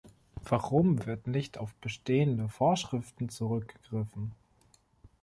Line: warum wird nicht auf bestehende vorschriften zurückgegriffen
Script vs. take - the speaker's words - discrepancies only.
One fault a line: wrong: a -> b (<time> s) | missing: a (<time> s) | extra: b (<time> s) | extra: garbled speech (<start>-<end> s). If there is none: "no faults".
no faults